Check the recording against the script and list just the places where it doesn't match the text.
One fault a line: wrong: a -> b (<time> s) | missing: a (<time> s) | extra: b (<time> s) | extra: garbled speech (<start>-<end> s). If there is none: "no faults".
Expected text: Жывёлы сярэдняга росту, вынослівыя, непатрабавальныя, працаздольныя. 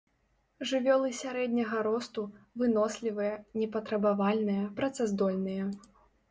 no faults